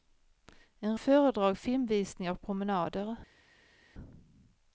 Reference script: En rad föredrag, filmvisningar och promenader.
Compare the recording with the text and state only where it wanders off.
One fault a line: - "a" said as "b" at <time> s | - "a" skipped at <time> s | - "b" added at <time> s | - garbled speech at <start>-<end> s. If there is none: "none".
- "rad" skipped at 1.0 s